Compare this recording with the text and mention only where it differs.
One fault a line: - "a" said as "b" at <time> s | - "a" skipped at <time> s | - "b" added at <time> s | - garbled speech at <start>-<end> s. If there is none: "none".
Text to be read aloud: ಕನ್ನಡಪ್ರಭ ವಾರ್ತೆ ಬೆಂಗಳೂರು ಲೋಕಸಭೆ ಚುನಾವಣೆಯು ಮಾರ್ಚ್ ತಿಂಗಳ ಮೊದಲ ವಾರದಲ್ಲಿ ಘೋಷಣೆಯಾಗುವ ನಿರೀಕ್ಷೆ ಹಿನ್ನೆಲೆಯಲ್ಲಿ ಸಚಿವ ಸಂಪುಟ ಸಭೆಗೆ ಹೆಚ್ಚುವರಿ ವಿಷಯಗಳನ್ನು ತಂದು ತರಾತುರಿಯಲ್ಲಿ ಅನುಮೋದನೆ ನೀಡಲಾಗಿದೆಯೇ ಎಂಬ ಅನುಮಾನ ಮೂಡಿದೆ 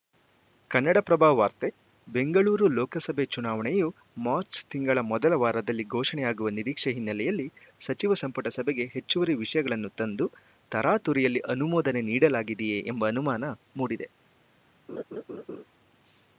none